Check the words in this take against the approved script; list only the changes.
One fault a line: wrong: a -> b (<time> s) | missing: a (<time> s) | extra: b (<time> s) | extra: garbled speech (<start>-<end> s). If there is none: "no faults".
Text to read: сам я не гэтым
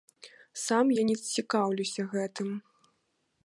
extra: цікаўлюся (1.3 s)